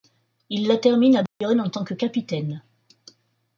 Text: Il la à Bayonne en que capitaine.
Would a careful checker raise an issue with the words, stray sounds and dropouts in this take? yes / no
yes